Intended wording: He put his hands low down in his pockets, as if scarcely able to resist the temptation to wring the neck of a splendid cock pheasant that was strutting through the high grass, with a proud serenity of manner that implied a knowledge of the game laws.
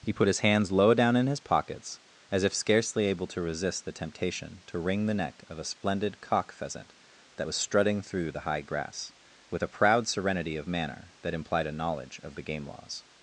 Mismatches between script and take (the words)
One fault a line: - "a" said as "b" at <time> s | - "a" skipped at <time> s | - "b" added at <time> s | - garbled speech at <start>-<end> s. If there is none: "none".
none